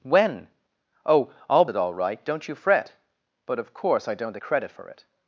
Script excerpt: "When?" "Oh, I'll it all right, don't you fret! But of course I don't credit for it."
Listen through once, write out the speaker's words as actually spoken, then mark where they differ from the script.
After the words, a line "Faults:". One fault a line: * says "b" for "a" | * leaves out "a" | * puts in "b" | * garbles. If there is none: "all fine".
"When?" "Oh, I'll it all right, don't you fret! But of course I don't credit for it."
Faults:
all fine